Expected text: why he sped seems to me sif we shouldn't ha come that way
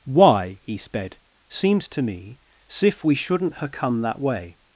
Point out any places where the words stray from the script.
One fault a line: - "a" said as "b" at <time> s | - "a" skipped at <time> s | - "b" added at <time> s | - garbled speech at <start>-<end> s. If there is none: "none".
none